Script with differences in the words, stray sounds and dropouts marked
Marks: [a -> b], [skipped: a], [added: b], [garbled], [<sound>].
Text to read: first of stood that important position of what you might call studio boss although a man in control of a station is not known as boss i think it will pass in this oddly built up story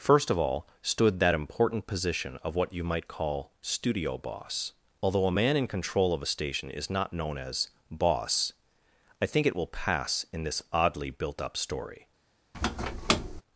first of [added: all] stood that important position of what you might call studio boss although a man in control of a station is not known as boss i think it will pass in this oddly built up story [squeak]